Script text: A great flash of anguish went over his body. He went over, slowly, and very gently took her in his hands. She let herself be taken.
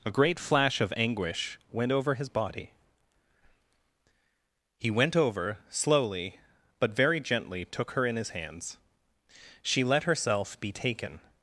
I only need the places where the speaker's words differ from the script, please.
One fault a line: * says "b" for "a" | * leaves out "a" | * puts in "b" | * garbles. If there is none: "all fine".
* says "but" for "and"